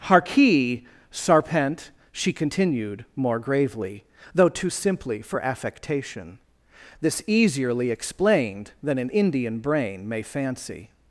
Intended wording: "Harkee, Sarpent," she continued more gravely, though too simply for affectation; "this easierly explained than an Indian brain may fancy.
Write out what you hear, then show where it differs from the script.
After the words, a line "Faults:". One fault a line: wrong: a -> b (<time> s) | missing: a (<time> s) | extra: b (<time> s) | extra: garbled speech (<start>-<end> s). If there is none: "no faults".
"Harkee, Sarpent," she continued more gravely, though too simply for affectation; "this easierly explained than an Indian brain may fancy.
Faults:
no faults